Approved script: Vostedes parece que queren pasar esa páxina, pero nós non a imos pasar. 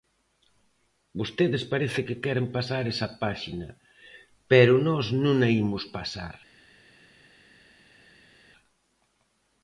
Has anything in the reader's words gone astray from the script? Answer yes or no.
no